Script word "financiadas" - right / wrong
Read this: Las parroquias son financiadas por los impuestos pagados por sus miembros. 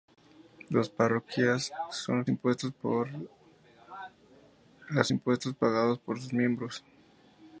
wrong